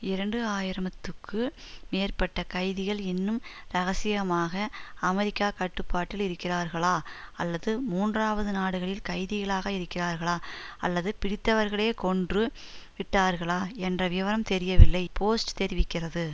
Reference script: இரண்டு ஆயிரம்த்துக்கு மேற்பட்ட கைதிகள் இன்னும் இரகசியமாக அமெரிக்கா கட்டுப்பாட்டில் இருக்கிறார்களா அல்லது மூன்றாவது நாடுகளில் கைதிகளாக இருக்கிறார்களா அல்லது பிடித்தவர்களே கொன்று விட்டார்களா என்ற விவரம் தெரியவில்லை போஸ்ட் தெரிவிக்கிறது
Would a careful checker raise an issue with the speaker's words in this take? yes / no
no